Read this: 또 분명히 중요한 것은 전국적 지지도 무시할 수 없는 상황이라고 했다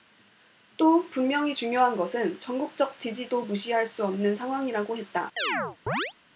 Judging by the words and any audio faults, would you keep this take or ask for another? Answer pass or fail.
fail